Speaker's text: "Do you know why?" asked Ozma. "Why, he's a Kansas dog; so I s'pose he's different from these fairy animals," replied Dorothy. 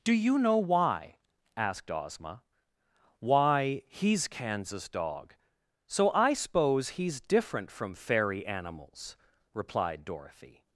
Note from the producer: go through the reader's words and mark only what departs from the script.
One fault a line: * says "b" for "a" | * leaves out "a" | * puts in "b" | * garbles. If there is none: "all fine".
* leaves out "a"
* leaves out "these"